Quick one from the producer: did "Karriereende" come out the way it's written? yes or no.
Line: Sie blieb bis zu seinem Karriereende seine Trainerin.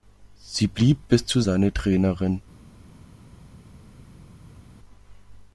no